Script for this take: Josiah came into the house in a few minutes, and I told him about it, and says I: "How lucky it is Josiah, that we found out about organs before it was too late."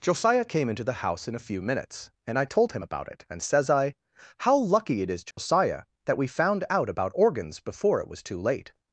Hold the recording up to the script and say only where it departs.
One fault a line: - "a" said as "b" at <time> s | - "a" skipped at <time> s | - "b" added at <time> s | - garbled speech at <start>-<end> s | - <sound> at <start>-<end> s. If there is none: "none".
- dropout at 5.3-5.4 s